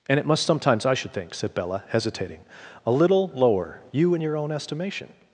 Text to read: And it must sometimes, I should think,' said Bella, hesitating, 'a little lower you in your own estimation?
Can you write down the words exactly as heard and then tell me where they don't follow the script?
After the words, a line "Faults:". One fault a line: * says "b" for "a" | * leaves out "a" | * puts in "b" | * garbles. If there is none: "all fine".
And it must sometimes, I should think,' said Bella, hesitating, 'a little lower you in your own estimation?
Faults:
all fine